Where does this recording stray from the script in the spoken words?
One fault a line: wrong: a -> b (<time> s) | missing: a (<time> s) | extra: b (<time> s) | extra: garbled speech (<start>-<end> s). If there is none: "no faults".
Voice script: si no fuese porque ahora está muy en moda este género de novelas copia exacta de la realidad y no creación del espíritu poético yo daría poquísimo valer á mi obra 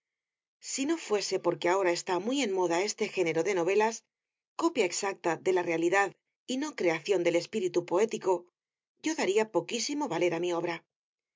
no faults